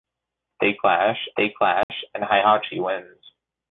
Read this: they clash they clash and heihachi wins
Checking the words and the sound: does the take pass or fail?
fail